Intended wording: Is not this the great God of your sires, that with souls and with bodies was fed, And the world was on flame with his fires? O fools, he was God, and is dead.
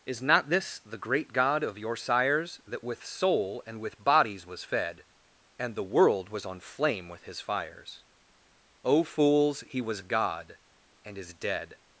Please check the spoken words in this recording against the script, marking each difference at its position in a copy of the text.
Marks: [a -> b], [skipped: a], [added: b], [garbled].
Is not this the great God of your sires, that with [souls -> soul] and with bodies was fed, And the world was on flame with his fires? O fools, he was God, and is dead.